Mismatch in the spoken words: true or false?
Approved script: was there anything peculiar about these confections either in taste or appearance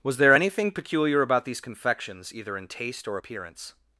false